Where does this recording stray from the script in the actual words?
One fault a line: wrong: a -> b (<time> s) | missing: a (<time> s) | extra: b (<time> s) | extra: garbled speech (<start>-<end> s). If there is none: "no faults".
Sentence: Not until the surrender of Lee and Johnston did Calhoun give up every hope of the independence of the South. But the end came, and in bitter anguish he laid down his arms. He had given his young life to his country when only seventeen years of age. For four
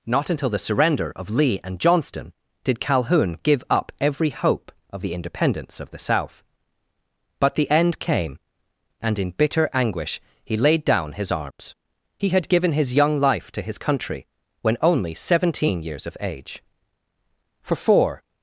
no faults